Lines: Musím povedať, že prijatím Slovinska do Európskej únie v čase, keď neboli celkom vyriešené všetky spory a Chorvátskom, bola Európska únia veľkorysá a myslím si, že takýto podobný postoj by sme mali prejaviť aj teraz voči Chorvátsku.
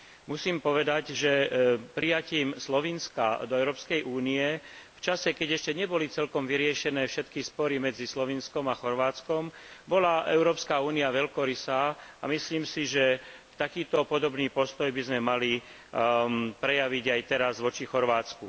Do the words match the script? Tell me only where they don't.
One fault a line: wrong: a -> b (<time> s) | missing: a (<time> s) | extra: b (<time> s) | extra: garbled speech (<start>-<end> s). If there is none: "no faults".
extra: ešte (5.5 s)
extra: medzi Slovinskom (7.8 s)